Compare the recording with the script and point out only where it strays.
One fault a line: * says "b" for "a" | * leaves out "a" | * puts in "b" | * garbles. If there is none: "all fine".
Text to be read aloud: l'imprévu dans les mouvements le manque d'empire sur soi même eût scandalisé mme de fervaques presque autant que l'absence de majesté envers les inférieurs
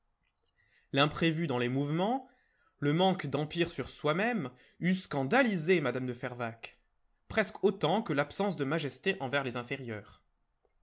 all fine